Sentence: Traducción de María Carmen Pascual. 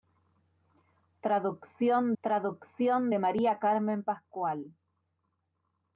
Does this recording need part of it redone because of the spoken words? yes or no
yes